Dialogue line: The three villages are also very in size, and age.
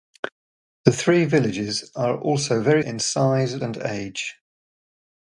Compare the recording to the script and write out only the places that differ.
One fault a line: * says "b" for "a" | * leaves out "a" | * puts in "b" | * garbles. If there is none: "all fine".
all fine